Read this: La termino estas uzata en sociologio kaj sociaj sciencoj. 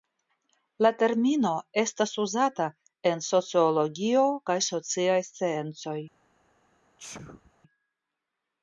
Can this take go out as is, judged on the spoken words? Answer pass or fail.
pass